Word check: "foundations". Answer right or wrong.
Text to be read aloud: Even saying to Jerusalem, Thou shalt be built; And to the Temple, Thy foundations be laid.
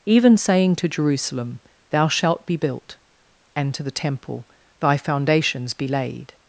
right